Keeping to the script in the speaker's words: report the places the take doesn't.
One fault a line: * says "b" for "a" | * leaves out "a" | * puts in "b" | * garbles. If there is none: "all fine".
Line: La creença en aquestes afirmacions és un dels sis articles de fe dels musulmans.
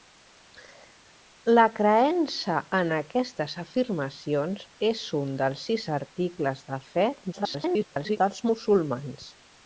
* garbles